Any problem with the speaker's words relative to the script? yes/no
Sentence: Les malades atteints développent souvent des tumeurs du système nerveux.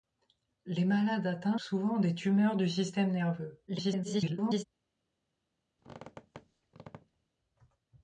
yes